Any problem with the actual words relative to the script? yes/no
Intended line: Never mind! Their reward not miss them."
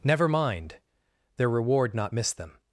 no